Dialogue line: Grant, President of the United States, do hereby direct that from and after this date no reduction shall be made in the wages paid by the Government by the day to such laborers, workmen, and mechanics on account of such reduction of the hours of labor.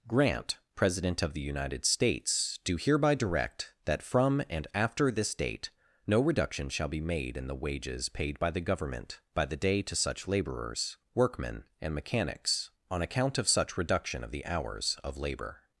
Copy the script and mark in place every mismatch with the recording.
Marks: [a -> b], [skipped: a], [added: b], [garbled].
Grant, President of the United States, do hereby direct that from and after this date no reduction shall be made in the wages paid by the Government by the day to such laborers, workmen, and mechanics on account of such reduction of the hours of labor.